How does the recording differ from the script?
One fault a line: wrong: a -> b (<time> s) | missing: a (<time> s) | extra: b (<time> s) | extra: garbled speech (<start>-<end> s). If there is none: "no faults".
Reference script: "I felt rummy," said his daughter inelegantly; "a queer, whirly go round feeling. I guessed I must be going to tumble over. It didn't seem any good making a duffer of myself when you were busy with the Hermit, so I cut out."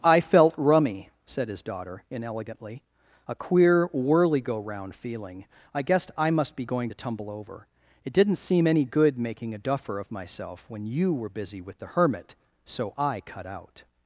no faults